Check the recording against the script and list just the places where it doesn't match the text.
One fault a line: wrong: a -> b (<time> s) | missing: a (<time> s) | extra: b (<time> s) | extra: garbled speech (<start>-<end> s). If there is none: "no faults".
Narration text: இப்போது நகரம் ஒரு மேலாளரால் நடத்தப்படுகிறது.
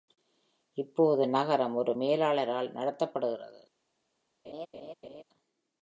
no faults